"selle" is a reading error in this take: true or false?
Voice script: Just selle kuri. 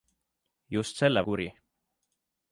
false